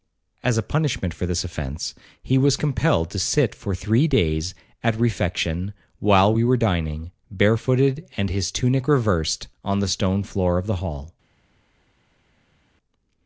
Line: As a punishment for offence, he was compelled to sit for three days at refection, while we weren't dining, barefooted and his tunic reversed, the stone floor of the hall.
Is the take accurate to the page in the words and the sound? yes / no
no